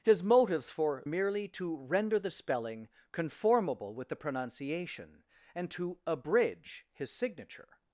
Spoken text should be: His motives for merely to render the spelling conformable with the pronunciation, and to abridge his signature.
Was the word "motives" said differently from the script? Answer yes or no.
no